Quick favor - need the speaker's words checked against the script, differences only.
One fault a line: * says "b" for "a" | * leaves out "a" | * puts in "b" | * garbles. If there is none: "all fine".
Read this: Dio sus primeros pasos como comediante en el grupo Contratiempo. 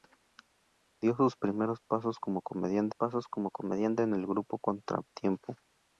* puts in "pasos como comediante"